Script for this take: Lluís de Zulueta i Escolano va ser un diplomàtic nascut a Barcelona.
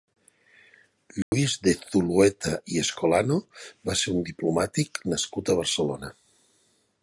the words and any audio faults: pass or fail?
fail